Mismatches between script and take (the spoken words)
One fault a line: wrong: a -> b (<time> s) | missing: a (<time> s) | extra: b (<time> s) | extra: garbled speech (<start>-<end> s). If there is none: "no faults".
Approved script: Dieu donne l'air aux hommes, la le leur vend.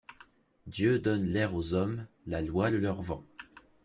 extra: loi (2.4 s)